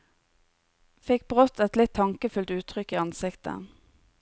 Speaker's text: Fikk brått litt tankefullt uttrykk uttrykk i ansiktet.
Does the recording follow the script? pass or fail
fail